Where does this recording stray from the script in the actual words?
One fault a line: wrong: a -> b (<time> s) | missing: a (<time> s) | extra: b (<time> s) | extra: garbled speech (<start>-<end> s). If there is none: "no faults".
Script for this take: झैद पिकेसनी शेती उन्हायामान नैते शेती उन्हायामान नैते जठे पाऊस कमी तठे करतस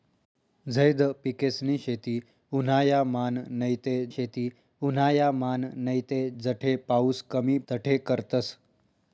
no faults